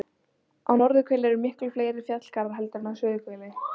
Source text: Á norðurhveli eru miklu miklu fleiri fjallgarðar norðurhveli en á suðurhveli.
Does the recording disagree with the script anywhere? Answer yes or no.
yes